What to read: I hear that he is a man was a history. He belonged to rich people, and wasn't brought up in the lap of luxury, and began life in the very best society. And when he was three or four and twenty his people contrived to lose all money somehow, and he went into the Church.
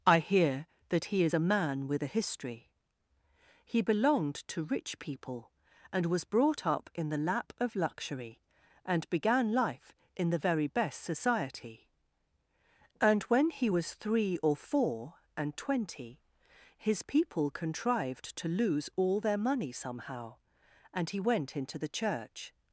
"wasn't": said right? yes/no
no